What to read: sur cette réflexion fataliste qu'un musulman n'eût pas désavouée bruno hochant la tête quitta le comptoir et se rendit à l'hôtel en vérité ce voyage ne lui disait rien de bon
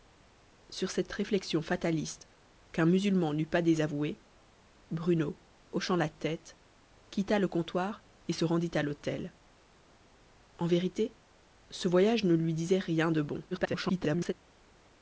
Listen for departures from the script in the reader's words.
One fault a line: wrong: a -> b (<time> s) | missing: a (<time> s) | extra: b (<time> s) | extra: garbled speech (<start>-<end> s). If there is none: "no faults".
extra: garbled speech (13.5-14.3 s)